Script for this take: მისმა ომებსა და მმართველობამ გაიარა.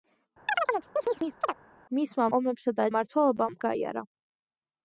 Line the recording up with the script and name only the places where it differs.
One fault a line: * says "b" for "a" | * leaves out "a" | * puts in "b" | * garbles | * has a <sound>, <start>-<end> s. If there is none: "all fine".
* has a chirp, 0.5-1.5 s